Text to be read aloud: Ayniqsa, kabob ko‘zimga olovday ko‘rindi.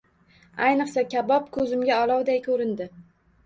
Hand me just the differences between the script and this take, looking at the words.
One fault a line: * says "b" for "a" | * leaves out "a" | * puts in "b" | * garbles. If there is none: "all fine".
all fine